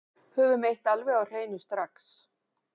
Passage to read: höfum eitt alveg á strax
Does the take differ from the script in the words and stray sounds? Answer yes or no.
yes